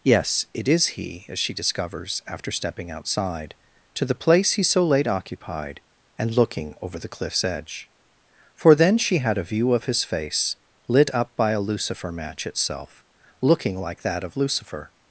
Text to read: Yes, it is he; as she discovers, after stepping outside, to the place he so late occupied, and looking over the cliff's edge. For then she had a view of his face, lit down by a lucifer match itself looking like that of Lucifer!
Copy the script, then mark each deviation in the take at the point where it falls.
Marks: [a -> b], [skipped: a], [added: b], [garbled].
Yes, it is he; as she discovers, after stepping outside, to the place he so late occupied, and looking over the cliff's edge. For then she had a view of his face, lit [down -> up] by a lucifer match itself looking like that of Lucifer!